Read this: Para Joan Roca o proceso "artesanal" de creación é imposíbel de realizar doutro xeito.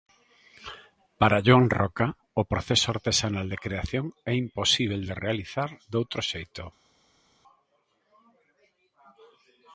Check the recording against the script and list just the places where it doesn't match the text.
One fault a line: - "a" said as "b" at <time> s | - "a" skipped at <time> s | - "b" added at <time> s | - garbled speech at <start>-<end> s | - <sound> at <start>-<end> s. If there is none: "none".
none